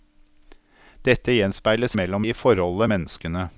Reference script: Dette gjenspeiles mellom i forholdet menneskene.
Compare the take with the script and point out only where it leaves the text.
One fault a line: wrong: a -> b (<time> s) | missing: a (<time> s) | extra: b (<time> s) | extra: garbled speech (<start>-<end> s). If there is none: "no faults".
no faults